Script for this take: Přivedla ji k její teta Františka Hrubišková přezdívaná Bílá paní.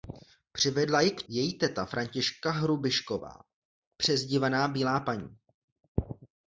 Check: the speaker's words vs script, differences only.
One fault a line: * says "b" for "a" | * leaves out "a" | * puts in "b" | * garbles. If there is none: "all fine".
all fine